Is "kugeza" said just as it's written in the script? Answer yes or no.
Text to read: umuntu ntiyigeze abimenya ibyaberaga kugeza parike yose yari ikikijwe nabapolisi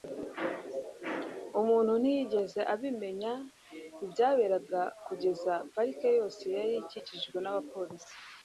yes